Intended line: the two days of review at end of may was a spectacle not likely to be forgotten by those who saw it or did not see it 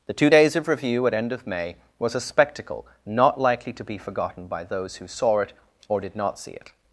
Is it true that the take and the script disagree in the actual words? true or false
false